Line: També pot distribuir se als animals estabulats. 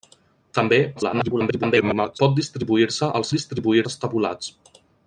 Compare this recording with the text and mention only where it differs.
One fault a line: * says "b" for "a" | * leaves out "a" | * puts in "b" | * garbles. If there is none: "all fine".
* garbles
* says "distribuir" for "animals"